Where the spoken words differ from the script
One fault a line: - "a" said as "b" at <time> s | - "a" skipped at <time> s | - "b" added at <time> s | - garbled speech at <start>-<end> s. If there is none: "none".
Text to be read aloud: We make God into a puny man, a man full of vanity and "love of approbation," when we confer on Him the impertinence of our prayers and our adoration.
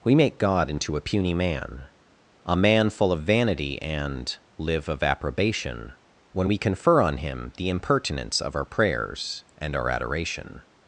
- "love" said as "live" at 4.6 s